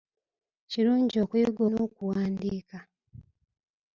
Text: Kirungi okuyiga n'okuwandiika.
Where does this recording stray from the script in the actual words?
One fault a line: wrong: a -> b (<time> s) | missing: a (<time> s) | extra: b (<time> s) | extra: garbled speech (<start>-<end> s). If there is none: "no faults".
no faults